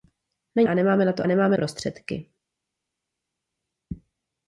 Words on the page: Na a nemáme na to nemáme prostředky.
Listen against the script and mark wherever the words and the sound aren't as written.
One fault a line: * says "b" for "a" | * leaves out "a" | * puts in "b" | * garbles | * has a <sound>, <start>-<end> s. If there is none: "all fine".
all fine